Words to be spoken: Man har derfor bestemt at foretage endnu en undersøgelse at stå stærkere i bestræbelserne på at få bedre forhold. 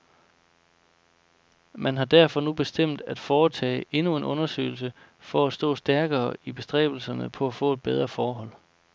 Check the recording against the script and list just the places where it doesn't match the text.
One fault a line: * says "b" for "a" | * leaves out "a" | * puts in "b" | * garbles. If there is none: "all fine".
* puts in "nu"
* puts in "for"